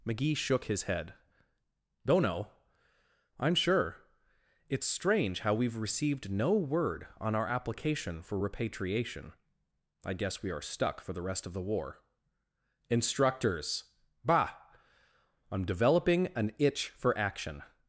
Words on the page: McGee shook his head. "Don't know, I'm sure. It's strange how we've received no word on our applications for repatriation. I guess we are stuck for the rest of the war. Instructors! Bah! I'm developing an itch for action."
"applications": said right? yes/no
no